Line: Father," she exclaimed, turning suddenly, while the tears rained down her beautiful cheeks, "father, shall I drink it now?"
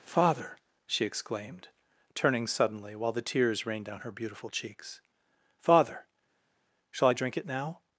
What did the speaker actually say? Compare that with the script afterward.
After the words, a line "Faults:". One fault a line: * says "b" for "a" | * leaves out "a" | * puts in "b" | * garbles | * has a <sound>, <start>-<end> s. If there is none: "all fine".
Father," she exclaimed, turning suddenly, while the tears rained down her beautiful cheeks, "father, shall I drink it now?"
Faults:
all fine